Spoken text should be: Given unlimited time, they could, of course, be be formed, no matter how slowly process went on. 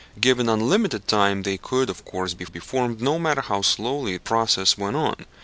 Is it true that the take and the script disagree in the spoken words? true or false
false